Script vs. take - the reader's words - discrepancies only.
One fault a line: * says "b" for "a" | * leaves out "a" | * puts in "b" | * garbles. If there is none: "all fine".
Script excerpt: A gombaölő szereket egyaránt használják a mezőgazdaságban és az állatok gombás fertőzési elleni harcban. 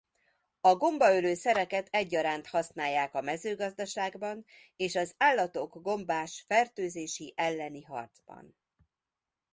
all fine